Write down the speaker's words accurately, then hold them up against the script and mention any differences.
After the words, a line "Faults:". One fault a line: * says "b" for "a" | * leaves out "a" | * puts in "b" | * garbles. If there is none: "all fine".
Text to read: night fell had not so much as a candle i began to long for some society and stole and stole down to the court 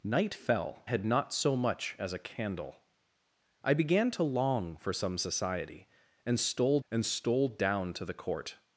night fell had not so much as a candle i began to long for some society and stole and stole down to the court
Faults:
all fine